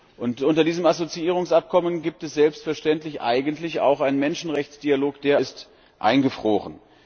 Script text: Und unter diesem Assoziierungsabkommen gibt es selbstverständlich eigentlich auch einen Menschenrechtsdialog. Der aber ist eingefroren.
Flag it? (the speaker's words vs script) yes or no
yes